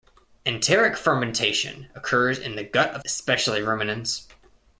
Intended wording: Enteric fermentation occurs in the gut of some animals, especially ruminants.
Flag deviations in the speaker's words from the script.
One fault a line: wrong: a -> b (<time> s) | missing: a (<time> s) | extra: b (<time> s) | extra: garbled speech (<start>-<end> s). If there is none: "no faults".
missing: some animals (3.0 s)